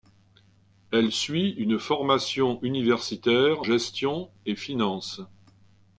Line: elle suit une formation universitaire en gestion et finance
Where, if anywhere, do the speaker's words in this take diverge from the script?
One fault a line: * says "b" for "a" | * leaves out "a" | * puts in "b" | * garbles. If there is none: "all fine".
* leaves out "en"